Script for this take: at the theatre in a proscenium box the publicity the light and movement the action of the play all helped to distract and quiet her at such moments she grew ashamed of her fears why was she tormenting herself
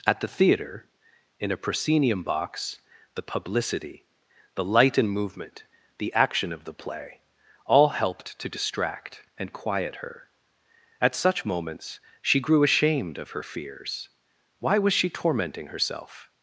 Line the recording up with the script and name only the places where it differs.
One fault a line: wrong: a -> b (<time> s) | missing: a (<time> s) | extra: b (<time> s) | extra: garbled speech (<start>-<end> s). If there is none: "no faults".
no faults